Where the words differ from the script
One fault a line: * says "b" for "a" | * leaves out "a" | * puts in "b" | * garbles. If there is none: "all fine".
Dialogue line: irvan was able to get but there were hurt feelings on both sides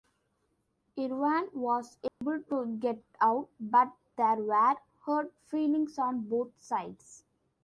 * puts in "out"